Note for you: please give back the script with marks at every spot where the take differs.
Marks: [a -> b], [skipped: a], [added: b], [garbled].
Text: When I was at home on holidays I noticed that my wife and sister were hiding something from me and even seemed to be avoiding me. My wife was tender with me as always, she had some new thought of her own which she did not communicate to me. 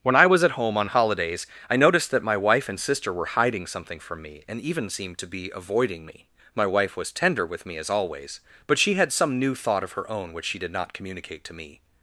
When I was at home on holidays I noticed that my wife and sister were hiding something from me and even seemed to be avoiding me. My wife was tender with me as always, [added: but] she had some new thought of her own which she did not communicate to me.